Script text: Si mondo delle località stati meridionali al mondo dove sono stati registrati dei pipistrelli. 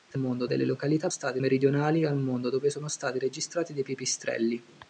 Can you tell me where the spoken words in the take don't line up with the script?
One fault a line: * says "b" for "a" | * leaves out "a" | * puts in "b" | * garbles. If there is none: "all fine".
all fine